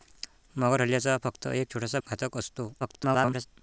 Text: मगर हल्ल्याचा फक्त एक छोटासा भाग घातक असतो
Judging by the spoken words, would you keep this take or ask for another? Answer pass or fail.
fail